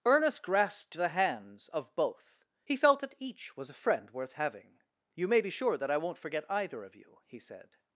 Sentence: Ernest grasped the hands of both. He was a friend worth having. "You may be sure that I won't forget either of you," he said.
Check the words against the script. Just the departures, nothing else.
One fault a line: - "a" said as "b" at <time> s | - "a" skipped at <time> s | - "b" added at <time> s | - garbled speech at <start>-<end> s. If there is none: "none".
- "felt that each" added at 2.8 s